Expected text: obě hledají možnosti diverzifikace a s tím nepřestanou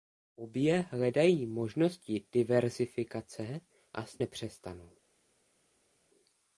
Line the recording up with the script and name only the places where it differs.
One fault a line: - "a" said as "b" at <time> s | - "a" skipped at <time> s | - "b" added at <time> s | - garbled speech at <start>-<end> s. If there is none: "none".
- "tím" skipped at 4.2 s